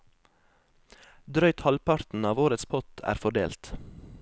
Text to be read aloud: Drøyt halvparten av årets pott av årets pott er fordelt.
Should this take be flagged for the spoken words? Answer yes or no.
yes